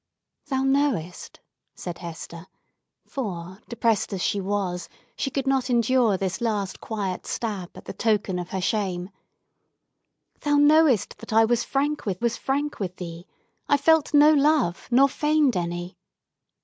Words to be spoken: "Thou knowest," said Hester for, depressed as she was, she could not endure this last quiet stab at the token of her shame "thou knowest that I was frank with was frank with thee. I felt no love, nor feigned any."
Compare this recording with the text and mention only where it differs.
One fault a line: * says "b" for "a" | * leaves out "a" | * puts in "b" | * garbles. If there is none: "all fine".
all fine